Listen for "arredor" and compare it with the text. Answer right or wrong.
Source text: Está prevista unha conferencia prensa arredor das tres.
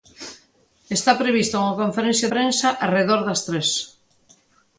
right